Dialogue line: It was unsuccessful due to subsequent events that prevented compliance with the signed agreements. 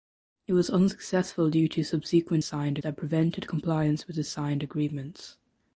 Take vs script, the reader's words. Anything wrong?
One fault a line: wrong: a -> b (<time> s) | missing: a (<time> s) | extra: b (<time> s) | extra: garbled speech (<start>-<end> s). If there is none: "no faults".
wrong: events -> signed (2.4 s)